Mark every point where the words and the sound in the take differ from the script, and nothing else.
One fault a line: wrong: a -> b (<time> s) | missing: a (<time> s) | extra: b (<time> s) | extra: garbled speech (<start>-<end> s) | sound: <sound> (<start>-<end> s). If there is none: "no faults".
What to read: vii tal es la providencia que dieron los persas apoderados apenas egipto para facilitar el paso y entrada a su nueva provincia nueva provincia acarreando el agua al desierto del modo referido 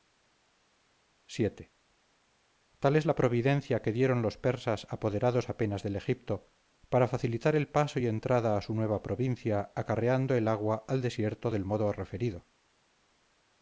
extra: del (5.8 s)
missing: nueva provincia (9.7 s)